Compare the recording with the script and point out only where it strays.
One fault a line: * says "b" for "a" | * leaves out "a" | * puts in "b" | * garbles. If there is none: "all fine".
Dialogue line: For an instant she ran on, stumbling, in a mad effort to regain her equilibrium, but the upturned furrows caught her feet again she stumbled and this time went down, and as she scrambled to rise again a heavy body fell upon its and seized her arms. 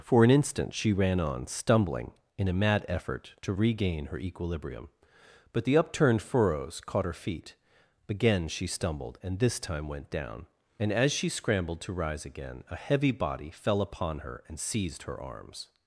* says "her" for "its"